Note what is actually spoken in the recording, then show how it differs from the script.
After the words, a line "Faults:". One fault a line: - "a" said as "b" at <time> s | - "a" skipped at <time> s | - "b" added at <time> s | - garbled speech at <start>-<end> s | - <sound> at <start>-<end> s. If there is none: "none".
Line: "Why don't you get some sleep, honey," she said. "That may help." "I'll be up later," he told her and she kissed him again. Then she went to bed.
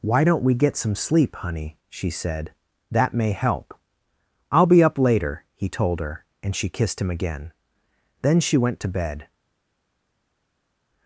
"Why don't we get some sleep, honey," she said. "That may help." "I'll be up later," he told her and she kissed him again. Then she went to bed.
Faults:
- "you" said as "we" at 0.4 s